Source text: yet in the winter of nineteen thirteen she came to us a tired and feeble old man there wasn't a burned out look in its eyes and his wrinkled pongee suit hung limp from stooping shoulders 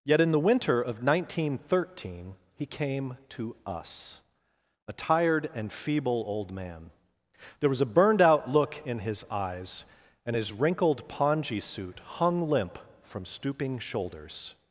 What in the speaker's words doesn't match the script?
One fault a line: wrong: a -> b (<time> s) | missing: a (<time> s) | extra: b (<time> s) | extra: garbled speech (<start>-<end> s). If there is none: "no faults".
wrong: she -> he (2.5 s)
wrong: wasn't -> was (7.7 s)
wrong: its -> his (9.0 s)